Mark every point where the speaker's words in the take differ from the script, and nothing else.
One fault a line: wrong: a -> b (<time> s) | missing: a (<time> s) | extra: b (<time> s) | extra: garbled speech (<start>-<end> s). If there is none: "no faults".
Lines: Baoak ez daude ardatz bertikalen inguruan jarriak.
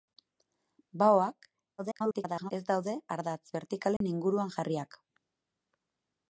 extra: garbled speech (1.8-2.5 s)